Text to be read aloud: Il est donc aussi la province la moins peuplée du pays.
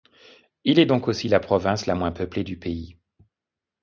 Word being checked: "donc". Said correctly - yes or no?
yes